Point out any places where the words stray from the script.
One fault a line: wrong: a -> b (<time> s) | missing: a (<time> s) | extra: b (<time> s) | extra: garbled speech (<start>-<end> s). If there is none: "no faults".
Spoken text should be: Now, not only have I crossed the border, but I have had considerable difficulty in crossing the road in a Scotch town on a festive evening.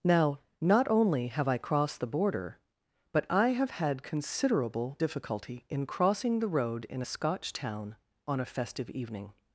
no faults